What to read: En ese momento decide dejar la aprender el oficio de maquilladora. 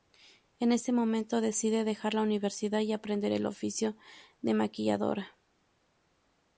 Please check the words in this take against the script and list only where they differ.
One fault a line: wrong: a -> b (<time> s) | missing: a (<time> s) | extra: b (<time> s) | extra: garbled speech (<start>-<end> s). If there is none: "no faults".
extra: universidad y (2.2 s)